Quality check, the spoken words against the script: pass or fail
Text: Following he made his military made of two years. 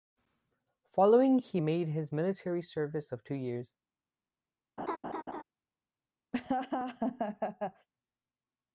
fail